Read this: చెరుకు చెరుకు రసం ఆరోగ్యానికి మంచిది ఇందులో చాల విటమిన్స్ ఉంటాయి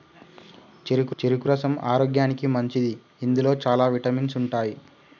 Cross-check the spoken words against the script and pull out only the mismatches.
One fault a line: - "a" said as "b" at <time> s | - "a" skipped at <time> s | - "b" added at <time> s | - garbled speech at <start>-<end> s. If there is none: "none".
none